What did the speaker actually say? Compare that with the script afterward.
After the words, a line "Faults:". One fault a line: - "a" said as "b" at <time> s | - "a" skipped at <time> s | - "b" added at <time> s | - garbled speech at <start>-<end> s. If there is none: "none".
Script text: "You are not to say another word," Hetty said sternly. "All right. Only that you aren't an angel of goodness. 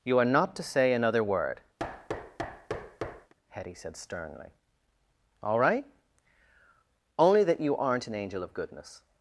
"You are not to say another word," Hetty said sternly. "All right. Only that you aren't an angel of goodness.
Faults:
none